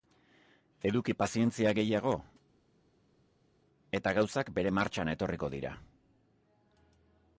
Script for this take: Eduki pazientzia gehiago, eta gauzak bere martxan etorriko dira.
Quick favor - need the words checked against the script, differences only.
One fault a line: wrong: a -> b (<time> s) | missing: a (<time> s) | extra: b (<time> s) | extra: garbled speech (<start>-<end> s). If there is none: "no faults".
no faults